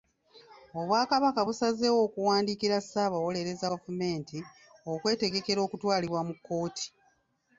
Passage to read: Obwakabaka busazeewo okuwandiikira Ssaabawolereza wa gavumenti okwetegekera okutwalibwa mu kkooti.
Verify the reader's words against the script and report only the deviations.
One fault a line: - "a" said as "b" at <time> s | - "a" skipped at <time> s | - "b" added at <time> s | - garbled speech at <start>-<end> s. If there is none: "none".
- "wa" skipped at 3.7 s